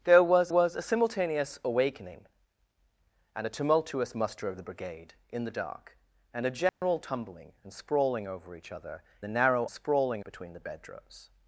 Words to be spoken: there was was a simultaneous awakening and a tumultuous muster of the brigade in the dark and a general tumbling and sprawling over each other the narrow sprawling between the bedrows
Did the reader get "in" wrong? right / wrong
right